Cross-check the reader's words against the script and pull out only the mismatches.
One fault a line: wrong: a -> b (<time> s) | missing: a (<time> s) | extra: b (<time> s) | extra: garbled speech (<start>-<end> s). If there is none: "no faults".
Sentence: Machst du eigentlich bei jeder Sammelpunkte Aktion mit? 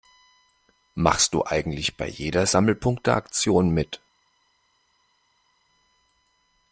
no faults